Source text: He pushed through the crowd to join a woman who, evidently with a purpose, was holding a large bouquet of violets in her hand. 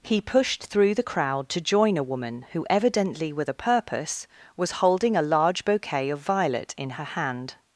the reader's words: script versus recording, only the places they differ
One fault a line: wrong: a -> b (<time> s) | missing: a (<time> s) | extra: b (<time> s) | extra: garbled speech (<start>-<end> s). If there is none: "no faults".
wrong: violets -> violet (6.2 s)